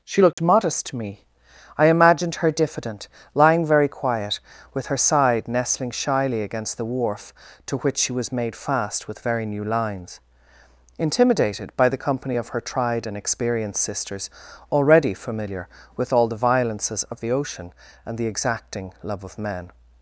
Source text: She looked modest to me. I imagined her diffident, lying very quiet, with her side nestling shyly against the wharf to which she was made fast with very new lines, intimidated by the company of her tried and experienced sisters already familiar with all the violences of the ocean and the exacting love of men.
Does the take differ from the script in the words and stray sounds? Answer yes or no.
yes